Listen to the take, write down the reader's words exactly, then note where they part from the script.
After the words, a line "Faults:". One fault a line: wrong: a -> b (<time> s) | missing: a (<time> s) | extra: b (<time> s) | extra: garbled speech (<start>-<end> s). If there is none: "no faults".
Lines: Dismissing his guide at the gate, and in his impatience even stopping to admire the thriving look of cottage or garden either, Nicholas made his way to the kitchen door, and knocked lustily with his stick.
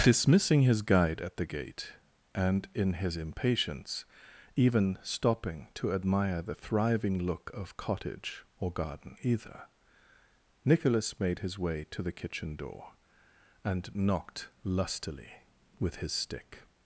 Dismissing his guide at the gate, and in his impatience even stopping to admire the thriving look of cottage or garden either, Nicholas made his way to the kitchen door, and knocked lustily with his stick.
Faults:
no faults